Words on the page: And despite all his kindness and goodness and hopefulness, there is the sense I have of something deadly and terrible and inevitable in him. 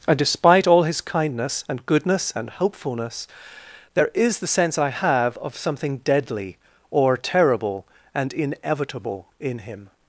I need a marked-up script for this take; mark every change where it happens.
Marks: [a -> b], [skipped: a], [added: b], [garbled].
And despite all his kindness and goodness and hopefulness, there is the sense I have of something deadly [and -> or] terrible and inevitable in him.